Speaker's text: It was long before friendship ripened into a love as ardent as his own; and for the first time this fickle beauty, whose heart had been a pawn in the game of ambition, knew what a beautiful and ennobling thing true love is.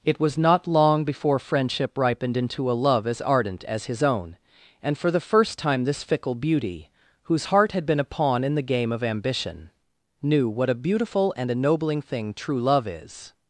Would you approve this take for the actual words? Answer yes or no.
no